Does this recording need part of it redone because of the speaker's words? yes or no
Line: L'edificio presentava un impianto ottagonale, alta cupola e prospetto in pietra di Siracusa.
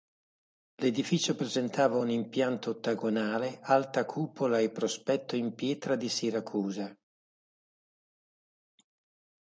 no